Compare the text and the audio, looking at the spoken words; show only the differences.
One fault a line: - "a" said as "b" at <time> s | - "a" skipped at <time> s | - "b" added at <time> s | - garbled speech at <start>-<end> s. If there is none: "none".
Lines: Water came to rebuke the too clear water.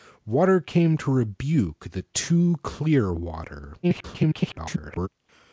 - garbled speech at 3.8-5.1 s